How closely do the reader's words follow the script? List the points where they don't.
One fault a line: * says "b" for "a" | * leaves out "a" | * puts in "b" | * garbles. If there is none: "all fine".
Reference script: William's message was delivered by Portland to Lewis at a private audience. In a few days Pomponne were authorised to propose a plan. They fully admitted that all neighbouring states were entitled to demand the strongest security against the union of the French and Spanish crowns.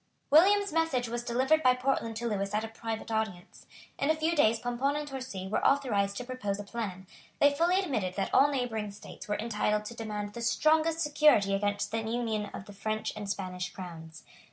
* puts in "and Torcy"